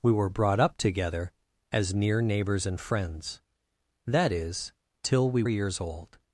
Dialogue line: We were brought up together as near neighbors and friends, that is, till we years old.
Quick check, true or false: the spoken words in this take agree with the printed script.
true